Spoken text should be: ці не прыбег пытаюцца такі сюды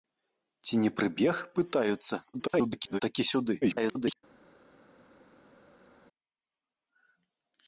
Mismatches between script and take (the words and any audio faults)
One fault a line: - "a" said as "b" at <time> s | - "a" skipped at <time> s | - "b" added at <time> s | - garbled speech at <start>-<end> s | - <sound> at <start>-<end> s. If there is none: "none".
- garbled speech at 2.3-3.0 s
- garbled speech at 3.6-4.2 s